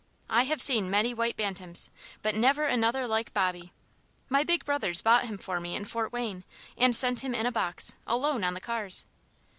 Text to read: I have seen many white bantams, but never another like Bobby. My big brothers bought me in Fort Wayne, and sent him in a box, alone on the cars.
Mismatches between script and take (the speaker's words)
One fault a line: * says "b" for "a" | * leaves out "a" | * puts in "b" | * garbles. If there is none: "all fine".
* puts in "him for"